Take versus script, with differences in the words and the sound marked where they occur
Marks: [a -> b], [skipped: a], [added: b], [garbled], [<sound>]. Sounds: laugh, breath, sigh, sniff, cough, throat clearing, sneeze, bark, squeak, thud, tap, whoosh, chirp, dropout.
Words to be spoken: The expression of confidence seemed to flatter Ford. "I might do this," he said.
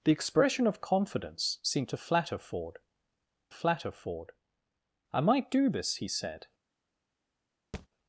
The expression of confidence seemed to flatter Ford. [added: flatter Ford] "I might do this," he said. [thud]